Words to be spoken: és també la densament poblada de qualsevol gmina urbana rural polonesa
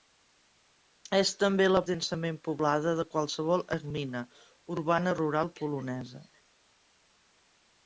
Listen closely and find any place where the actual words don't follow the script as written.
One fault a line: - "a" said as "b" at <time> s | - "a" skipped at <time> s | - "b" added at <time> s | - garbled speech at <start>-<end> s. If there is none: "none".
none